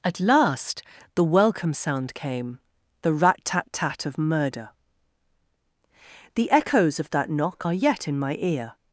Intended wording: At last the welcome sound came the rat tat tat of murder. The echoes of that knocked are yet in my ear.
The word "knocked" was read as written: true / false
false